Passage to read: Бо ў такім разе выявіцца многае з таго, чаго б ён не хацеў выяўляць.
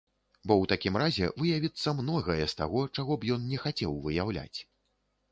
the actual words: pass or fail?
pass